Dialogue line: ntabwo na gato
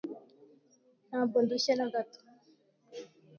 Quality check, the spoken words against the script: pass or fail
fail